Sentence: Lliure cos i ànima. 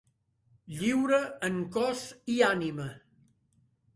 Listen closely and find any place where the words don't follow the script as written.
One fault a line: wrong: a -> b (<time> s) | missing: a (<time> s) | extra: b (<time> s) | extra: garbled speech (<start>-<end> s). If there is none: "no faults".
extra: en (1.5 s)